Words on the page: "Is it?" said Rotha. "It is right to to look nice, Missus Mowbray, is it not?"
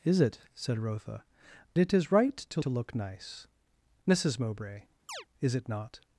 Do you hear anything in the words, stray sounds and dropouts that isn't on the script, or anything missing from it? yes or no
yes